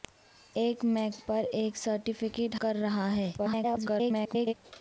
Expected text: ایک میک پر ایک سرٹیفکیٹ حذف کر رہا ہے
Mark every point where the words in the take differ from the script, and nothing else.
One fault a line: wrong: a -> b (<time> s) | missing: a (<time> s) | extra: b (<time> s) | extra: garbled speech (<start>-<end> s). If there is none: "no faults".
missing: حذف (2.5 s)
extra: garbled speech (3.4-4.5 s)